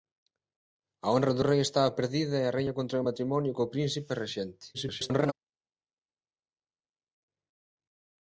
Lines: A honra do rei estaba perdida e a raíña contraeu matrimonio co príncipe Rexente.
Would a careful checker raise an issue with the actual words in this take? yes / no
yes